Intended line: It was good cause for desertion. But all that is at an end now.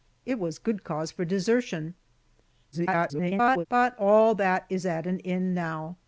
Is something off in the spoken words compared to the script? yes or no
yes